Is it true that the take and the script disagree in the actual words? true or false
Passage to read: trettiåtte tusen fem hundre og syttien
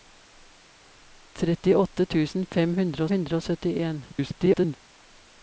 true